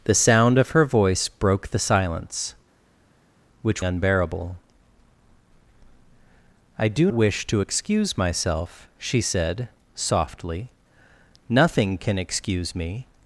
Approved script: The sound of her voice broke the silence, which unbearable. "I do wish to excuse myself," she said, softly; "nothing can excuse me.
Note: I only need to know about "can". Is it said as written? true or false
true